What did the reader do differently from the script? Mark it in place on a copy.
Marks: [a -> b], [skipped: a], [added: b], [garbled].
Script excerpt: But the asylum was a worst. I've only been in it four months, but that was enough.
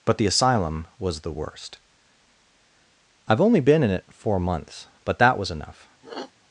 But the asylum was [a -> the] worst. I've only been in it four months, but that was enough.